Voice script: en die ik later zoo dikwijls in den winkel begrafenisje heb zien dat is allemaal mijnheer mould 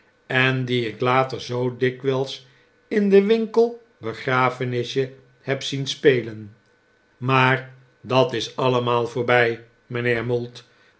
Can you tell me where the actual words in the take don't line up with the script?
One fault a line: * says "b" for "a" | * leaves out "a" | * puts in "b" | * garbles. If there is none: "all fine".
* puts in "spelen maar"
* puts in "voorbij"